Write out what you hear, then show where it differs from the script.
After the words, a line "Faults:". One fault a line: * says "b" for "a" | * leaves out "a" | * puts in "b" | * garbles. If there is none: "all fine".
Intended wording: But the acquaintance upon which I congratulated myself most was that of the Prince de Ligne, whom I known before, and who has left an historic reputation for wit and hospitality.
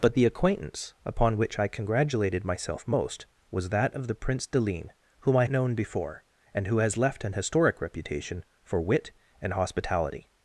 But the acquaintance upon which I congratulated myself most was that of the Prince de Ligne, whom I known before, and who has left an historic reputation for wit and hospitality.
Faults:
all fine